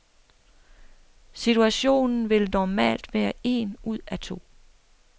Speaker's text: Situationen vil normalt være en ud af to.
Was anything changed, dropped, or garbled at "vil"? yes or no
no